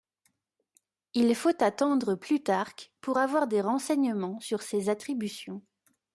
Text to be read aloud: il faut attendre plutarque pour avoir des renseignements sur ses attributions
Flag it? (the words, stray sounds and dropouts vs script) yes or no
no